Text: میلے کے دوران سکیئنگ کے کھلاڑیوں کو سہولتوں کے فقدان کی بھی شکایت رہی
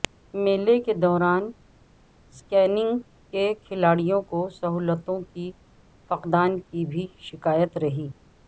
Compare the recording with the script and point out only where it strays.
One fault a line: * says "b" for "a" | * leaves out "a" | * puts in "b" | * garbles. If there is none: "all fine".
all fine